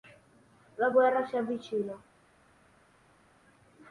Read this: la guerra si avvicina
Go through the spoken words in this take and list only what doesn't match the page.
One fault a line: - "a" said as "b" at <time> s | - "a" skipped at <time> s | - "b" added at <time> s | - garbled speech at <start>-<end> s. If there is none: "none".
none